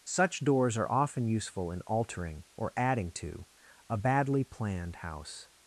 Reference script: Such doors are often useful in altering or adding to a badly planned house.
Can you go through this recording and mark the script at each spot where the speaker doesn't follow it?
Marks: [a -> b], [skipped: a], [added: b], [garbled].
Such doors are often useful in altering or adding to a badly planned house.